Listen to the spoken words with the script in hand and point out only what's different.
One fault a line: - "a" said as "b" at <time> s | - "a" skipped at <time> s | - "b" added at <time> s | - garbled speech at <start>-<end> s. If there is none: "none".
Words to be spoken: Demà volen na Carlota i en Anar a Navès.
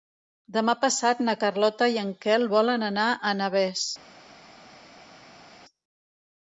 - "volen" said as "passat" at 0.8 s
- "Quel volen" added at 2.3 s